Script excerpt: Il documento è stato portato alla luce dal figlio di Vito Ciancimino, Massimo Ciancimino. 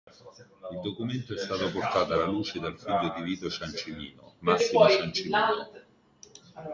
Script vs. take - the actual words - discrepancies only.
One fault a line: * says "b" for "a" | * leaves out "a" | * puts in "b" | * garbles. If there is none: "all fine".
all fine